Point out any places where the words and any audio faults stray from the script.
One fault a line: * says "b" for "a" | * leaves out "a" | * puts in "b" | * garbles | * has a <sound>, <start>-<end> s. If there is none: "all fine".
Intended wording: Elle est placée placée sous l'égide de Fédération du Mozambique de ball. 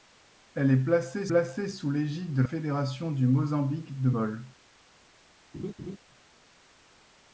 * has a laugh, 5.5-6.0 s